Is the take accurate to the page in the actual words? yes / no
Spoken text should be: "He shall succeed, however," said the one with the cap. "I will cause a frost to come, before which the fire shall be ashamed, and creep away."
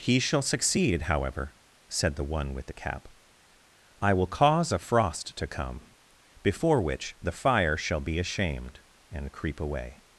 yes